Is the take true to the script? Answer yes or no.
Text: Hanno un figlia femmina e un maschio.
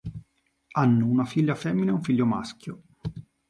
no